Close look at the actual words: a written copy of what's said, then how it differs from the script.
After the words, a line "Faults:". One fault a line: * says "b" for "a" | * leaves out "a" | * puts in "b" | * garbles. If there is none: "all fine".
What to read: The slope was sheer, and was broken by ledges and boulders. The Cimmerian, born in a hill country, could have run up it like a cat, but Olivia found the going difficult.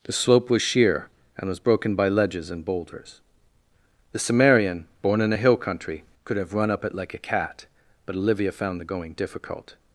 The slope was sheer, and was broken by ledges and boulders. The Cimmerian, born in a hill country, could have run up it like a cat, but Olivia found the going difficult.
Faults:
all fine